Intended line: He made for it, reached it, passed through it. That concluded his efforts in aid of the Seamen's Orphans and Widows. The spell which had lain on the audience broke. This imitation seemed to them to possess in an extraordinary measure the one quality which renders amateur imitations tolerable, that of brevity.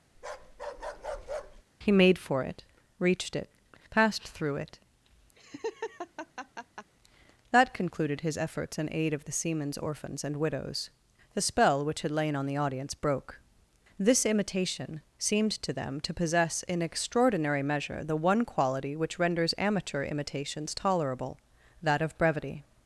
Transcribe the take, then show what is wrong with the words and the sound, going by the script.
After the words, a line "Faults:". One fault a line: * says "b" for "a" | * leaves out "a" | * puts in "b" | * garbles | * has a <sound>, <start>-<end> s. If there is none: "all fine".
He made for it, reached it, passed through it. That concluded his efforts in aid of the Seamen's Orphans and Widows. The spell which had lain on the audience broke. This imitation seemed to them to possess in extraordinary measure the one quality which renders amateur imitations tolerable, that of brevity.
Faults:
* has a bark, 0.1-1.6 s
* has a laugh, 5.4-6.9 s
* leaves out "an"